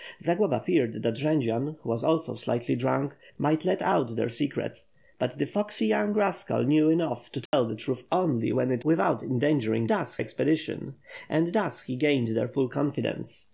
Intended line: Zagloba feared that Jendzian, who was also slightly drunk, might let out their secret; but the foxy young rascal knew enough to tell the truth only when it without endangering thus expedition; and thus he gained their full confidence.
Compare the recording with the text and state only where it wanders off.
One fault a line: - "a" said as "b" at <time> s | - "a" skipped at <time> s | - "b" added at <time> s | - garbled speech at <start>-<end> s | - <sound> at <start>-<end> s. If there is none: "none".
- dropout at 7.5-7.5 s